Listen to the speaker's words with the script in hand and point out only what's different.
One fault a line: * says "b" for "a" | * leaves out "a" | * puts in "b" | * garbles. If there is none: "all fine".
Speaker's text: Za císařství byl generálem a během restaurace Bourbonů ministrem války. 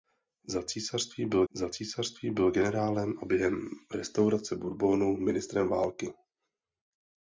* puts in "za císařství byl"